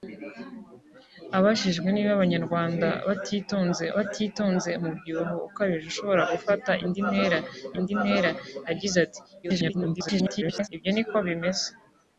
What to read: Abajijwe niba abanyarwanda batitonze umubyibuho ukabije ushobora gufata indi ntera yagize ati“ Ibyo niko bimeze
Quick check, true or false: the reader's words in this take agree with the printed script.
false